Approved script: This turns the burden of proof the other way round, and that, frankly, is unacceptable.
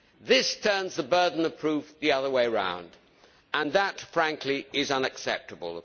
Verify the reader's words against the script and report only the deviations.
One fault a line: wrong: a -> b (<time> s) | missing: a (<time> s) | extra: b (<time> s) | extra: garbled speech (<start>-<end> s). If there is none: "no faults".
no faults